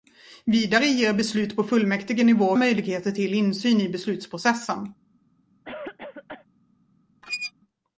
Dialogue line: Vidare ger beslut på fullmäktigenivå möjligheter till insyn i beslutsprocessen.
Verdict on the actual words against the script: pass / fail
pass